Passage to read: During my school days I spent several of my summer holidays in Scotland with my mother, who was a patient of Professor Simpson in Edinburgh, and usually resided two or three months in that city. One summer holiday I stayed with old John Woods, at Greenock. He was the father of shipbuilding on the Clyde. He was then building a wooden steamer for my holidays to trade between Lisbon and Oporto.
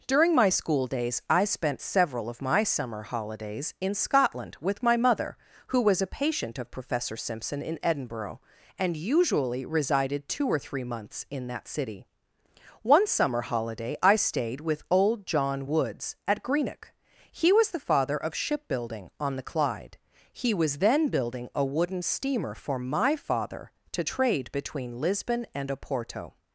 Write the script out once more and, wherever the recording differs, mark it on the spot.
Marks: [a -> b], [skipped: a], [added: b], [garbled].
During my school days I spent several of my summer holidays in Scotland with my mother, who was a patient of Professor Simpson in Edinburgh, and usually resided two or three months in that city. One summer holiday I stayed with old John Woods, at Greenock. He was the father of shipbuilding on the Clyde. He was then building a wooden steamer for my [holidays -> father] to trade between Lisbon and Oporto.